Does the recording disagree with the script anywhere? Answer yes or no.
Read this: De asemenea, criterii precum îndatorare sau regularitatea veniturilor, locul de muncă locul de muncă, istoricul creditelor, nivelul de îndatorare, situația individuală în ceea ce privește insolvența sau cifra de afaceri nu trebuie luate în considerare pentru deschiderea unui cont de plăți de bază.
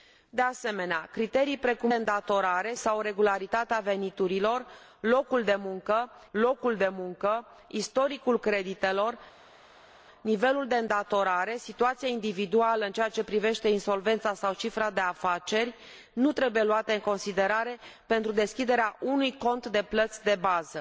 no